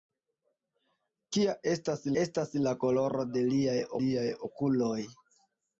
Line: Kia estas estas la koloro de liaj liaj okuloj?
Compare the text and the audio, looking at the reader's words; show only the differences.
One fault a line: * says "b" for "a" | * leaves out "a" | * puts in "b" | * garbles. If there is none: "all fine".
all fine